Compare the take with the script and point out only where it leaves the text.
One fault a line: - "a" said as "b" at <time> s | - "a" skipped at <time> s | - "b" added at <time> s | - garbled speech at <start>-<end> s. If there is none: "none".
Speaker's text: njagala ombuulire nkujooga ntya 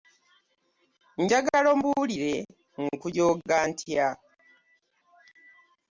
none